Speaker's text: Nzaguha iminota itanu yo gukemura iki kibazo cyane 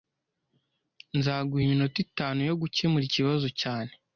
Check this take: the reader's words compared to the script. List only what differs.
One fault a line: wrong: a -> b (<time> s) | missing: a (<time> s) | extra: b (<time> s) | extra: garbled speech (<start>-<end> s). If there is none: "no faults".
missing: iki (3.0 s)